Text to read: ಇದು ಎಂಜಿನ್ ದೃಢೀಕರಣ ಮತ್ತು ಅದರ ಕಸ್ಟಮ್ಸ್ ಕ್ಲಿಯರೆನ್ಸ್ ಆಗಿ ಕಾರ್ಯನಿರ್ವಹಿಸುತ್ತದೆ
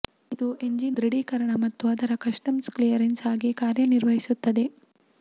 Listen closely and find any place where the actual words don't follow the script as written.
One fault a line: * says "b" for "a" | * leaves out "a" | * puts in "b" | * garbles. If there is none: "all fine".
all fine